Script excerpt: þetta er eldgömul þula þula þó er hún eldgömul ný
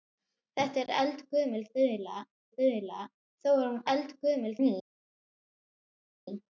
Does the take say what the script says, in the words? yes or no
yes